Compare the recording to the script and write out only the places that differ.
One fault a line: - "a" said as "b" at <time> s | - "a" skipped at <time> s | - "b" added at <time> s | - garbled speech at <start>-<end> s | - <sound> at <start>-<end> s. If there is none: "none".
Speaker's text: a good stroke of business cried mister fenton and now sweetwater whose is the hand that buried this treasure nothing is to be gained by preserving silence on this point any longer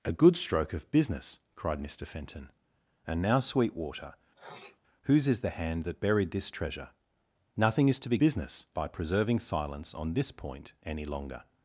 - sneeze at 4.3-4.8 s
- "gained" said as "business" at 8.2 s